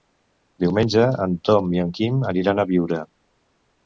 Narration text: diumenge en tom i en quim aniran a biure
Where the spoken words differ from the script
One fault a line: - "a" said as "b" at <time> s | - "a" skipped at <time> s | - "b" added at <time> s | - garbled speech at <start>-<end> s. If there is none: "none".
none